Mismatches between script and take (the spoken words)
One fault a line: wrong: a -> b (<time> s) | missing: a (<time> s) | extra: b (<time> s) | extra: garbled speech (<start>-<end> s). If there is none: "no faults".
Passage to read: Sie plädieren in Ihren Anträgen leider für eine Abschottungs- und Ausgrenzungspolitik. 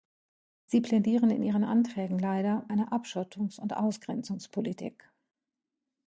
missing: für (2.6 s)